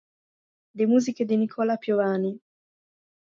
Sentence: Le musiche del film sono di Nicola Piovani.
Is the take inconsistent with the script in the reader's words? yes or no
yes